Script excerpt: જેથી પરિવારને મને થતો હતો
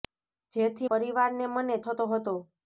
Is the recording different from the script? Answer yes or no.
no